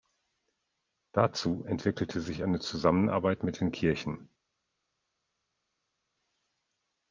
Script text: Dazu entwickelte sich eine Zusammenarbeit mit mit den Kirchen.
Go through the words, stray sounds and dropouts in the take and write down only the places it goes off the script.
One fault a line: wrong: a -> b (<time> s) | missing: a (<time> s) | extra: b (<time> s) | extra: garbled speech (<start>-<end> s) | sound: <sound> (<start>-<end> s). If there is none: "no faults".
missing: mit (3.6 s)